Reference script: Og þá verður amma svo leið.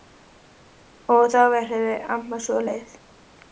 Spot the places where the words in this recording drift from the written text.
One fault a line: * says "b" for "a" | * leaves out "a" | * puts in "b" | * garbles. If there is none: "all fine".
all fine